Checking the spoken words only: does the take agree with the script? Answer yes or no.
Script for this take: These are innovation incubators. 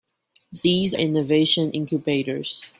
no